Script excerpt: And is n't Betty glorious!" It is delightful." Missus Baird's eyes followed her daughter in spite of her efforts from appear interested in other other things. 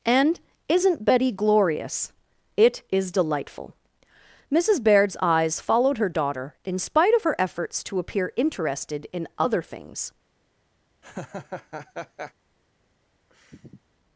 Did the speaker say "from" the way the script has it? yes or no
no